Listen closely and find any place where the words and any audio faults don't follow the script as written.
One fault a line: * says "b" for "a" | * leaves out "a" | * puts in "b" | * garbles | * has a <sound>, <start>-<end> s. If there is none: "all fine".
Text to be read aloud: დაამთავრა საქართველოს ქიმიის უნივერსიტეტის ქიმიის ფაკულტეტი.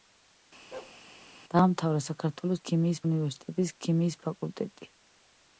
* has a bark, 0.7-1.0 s